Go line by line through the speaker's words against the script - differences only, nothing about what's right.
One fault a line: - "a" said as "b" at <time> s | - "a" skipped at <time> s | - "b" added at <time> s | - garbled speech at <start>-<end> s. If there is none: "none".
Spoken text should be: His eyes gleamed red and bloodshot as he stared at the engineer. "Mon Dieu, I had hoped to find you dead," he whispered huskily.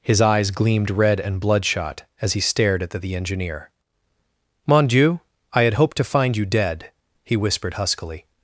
- "the" added at 3.0 s